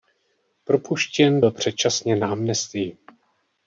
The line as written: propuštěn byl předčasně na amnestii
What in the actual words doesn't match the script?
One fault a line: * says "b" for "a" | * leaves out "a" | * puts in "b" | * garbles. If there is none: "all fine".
all fine